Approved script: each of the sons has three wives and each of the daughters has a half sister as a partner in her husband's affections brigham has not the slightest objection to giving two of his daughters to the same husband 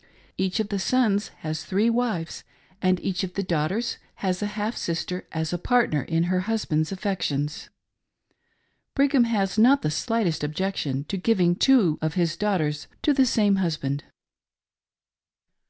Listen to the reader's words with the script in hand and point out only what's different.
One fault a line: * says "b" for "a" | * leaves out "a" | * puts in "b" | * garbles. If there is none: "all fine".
all fine